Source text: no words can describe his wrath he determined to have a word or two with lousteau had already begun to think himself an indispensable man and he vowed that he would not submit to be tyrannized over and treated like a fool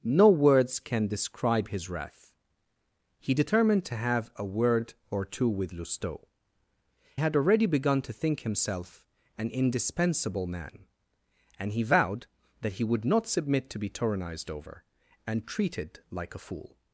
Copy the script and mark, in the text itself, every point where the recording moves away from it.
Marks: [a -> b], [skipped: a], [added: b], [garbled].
no words can describe his wrath he determined to have a word or two with lousteau had already begun to think himself an indispensable man and he vowed that he would not submit to be tyrannized over and treated like a fool